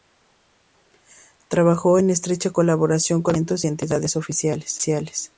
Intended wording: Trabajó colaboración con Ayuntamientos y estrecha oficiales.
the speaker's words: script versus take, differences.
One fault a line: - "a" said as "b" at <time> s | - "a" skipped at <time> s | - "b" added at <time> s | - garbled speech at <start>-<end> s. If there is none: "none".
- "en estrecha" added at 2.0 s
- "estrecha" said as "entidades" at 3.7 s